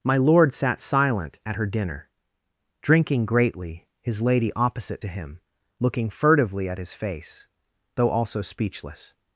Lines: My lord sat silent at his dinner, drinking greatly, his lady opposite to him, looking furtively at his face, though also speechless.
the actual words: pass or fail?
fail